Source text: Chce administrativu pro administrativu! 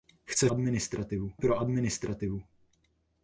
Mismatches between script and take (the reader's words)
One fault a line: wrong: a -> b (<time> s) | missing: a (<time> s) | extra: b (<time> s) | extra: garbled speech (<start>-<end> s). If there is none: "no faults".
no faults